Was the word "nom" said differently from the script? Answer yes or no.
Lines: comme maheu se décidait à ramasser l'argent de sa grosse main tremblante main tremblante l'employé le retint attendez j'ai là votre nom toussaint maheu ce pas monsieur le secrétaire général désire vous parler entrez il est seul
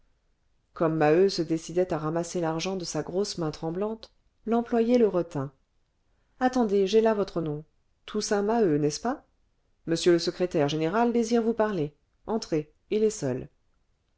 no